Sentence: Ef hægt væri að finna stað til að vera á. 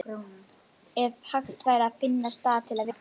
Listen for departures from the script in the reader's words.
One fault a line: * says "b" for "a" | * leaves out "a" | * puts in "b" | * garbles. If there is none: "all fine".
* leaves out "vera"